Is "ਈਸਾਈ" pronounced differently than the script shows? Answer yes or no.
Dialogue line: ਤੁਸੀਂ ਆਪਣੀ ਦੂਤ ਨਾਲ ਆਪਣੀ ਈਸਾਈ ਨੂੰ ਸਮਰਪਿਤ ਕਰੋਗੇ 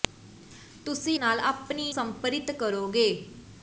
yes